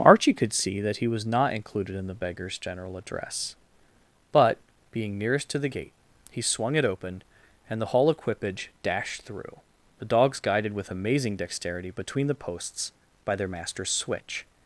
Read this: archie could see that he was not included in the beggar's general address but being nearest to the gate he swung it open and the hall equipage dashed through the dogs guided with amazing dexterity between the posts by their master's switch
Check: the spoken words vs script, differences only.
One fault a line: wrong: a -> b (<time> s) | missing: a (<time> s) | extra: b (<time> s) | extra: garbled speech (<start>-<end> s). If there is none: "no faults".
no faults